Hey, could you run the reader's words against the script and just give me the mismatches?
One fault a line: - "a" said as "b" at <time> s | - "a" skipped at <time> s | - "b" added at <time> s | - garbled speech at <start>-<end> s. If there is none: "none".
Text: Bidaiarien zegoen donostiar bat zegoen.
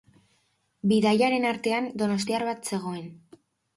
- "zegoen" said as "artean" at 1.5 s